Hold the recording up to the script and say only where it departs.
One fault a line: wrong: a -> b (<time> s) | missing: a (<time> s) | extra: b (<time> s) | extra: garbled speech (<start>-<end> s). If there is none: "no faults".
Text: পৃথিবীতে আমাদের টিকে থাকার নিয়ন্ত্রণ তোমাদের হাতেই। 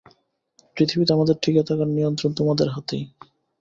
no faults